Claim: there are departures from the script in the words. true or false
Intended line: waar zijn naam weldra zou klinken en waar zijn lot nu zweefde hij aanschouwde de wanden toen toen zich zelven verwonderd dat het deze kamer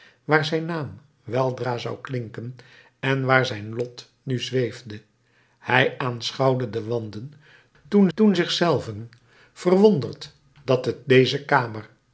false